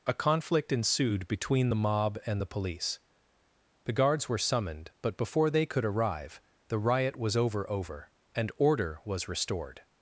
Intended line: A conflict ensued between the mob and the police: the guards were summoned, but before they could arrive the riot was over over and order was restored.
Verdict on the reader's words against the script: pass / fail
pass